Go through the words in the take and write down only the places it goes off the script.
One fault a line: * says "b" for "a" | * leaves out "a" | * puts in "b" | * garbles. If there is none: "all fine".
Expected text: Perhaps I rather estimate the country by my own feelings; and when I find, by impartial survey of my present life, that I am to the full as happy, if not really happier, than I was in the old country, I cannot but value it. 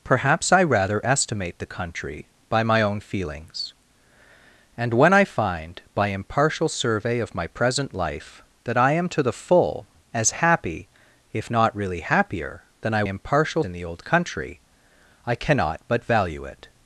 * says "impartial" for "was"